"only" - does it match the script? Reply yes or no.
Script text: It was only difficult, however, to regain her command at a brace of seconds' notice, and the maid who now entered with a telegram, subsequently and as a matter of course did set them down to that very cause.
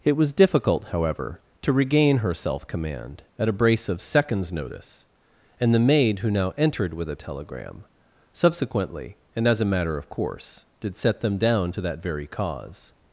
no